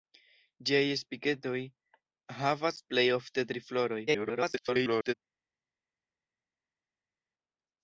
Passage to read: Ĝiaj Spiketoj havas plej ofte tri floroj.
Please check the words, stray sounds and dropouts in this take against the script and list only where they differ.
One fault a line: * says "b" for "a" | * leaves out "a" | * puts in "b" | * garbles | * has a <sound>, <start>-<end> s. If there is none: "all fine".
* garbles